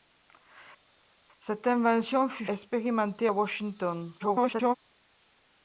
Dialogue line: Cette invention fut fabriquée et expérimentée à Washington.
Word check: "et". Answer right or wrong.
wrong